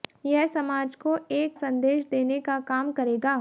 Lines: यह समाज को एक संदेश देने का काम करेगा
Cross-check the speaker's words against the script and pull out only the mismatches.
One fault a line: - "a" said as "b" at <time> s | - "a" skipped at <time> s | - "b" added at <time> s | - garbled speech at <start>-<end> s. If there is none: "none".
none